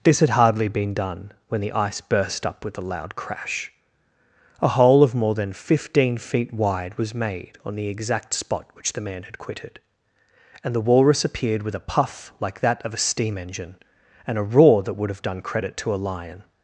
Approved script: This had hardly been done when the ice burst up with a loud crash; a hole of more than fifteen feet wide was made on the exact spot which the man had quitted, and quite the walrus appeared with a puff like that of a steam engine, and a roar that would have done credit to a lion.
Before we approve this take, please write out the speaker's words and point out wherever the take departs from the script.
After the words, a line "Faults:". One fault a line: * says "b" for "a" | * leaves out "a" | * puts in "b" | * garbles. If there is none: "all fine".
This had hardly been done when the ice burst up with a loud crash; a hole of more than fifteen feet wide was made on the exact spot which the man had quitted, and the walrus appeared with a puff like that of a steam engine, and a roar that would have done credit to a lion.
Faults:
* leaves out "quite"